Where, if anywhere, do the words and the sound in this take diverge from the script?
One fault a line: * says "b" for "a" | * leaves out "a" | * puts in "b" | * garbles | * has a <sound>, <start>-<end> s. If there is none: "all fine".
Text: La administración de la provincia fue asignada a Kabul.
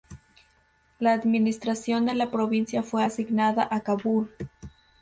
all fine